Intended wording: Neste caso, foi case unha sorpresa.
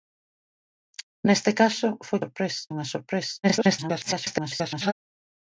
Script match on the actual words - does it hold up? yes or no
no